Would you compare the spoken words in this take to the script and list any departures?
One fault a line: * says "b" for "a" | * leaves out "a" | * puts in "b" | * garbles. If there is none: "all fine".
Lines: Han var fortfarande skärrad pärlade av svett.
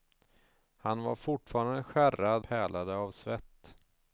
all fine